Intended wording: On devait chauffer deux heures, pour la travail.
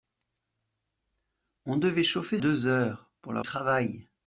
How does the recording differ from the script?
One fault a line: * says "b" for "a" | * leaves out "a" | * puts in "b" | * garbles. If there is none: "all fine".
all fine